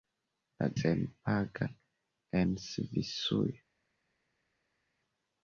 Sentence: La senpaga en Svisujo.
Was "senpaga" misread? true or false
false